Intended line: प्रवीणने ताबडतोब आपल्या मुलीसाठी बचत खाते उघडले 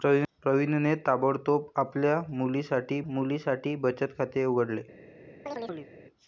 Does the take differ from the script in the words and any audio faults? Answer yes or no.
yes